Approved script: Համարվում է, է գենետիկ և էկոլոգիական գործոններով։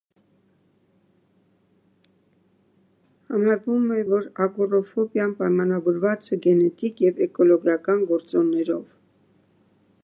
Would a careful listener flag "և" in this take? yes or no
no